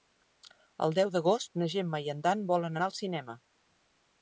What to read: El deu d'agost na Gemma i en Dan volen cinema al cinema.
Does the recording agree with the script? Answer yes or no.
no